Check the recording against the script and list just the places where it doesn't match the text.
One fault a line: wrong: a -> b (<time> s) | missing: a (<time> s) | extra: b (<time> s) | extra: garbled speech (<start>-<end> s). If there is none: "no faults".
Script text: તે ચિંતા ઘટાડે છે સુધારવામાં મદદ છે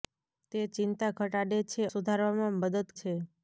no faults